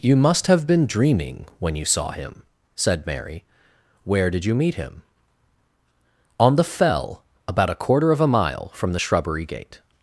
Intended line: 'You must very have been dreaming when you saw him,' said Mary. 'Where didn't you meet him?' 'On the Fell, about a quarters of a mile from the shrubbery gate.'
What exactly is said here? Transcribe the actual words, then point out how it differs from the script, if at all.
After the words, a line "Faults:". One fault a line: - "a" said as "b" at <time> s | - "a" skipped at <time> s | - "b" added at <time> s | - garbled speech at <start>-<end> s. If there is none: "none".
'You must have been dreaming when you saw him,' said Mary. 'Where did you meet him?' 'On the Fell, about a quarter of a mile from the shrubbery gate.'
Faults:
- "very" skipped at 0.5 s
- "didn't" said as "did" at 4.3 s
- "quarters" said as "quarter" at 7.8 s